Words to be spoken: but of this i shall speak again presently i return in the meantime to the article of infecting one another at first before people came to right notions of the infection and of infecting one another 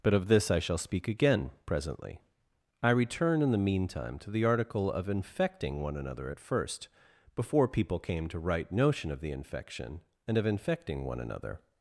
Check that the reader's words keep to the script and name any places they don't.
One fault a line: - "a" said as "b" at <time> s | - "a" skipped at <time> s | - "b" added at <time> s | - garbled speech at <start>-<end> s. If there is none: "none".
- "notions" said as "notion" at 8.7 s